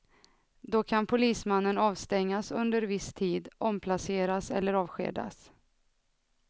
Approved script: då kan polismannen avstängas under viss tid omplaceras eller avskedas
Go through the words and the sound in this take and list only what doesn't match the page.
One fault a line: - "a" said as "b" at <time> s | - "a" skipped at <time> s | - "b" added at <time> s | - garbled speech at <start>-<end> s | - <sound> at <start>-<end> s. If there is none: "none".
none